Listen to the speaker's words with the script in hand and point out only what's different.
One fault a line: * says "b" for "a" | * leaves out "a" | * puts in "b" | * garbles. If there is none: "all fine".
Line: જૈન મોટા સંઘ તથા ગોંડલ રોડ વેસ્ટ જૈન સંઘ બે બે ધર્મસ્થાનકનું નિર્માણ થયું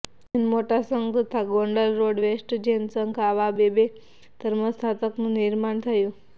* puts in "આવા"